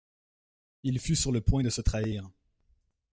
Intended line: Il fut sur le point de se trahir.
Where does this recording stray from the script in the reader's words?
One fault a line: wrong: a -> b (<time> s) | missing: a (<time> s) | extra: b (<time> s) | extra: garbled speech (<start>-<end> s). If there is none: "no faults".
no faults